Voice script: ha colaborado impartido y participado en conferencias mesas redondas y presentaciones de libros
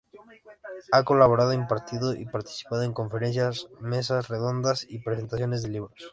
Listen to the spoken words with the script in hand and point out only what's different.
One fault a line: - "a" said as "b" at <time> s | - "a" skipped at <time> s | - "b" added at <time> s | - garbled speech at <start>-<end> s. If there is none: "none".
none